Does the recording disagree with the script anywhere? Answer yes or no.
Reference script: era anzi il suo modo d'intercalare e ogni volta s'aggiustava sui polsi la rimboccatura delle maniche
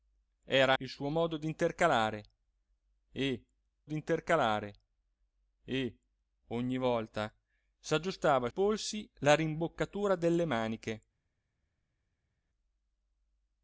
yes